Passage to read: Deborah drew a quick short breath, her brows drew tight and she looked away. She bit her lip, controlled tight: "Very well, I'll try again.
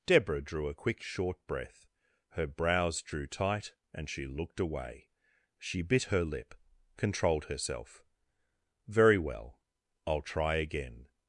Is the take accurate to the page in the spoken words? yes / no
no